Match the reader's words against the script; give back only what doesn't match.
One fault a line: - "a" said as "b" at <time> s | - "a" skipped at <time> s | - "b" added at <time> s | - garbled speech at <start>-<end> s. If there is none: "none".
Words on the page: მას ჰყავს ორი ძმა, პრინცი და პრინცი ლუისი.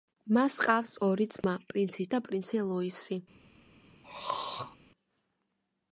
none